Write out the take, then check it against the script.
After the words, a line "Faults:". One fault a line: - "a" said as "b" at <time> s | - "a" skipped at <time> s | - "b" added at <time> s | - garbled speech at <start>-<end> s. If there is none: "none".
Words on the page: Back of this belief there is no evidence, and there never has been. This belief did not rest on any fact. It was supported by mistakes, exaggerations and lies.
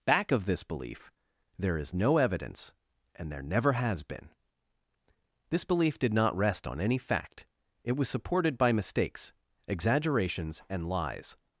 Back of this belief there is no evidence, and there never has been. This belief did not rest on any fact. It was supported by mistakes, exaggerations and lies.
Faults:
none